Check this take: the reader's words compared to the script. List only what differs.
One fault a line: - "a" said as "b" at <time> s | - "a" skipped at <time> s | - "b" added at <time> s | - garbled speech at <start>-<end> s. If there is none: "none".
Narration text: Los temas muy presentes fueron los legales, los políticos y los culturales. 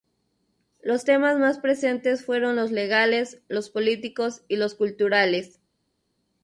- "muy" said as "más" at 1.4 s